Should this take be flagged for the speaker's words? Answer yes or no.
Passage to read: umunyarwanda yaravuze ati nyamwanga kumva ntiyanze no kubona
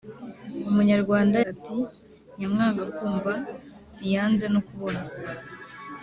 yes